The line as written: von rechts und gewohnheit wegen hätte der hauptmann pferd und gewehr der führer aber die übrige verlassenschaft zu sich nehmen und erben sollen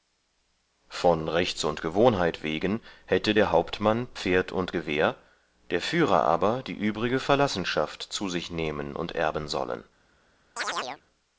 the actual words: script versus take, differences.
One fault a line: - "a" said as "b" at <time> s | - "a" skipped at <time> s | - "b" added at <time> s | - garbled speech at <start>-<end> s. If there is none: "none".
none